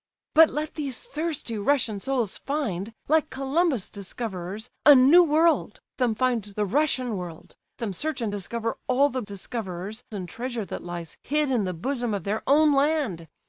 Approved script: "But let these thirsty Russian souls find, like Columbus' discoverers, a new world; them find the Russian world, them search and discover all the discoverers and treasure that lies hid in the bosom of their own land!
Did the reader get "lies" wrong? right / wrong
right